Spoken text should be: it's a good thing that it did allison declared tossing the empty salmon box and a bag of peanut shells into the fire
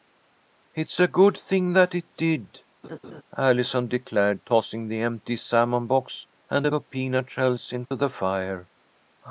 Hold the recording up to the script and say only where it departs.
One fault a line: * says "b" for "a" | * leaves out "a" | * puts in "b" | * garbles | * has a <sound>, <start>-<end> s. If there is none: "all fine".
* has a laugh, 2.8-3.2 s
* leaves out "bag"
* has a dropout, 7.8-7.9 s